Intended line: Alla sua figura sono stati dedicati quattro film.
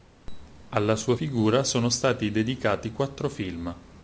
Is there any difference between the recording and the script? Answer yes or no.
no